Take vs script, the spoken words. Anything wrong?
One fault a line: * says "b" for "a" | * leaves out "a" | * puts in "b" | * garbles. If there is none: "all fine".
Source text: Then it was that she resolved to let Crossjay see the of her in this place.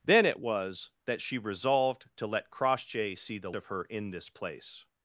all fine